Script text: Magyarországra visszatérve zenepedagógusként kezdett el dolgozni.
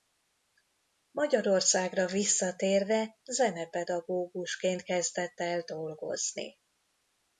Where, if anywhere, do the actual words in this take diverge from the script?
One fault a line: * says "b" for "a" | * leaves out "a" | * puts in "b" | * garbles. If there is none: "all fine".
all fine